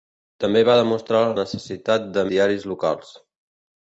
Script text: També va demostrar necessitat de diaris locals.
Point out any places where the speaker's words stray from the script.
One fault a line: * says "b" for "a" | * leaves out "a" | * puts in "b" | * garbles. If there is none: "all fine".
all fine